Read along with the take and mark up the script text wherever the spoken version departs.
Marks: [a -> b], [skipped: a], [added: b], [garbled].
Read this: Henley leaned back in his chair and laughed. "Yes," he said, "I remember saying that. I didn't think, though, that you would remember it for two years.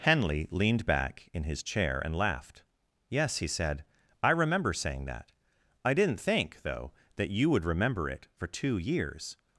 Henley leaned back in his chair and laughed. "Yes," he said, "I remember saying that. I didn't think, though, that you would remember it for two years.